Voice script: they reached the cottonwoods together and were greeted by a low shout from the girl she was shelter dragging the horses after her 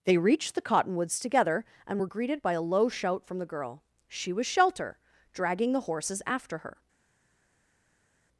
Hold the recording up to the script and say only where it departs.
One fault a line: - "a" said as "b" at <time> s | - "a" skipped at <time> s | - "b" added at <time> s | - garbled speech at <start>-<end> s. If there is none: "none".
none